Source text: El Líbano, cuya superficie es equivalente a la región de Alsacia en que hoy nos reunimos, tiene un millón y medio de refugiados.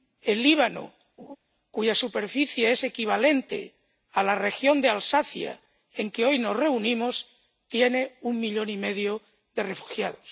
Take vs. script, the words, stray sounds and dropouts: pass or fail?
fail